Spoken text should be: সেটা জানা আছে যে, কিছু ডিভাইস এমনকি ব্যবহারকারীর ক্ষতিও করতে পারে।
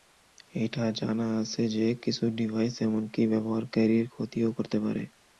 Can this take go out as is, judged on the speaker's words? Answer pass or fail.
fail